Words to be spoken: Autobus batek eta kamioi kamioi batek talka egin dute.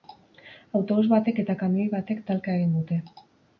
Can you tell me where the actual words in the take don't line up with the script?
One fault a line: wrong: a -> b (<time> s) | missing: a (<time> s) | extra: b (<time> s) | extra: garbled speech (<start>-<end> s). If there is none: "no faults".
missing: kamioi (1.9 s)